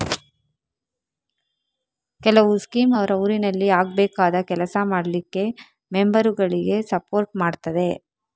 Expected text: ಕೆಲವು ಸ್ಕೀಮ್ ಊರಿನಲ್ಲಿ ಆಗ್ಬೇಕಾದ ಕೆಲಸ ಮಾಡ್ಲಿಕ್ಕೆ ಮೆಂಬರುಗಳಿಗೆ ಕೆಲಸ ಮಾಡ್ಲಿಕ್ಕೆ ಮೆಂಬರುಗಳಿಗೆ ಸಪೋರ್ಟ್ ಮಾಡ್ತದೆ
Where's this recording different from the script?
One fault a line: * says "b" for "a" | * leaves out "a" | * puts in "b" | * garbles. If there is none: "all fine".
* puts in "ಅವ್ರ"
* leaves out "ಕೆಲಸ ಮಾಡ್ಲಿಕ್ಕೆ ಮೆಂಬರುಗಳಿಗೆ"